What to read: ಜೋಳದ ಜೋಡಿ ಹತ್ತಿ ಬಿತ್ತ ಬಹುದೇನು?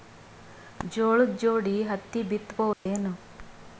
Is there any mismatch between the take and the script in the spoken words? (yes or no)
no